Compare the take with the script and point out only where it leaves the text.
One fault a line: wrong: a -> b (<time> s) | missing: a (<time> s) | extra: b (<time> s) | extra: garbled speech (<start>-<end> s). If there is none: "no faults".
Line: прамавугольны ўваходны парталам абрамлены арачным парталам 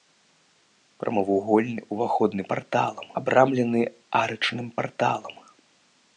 no faults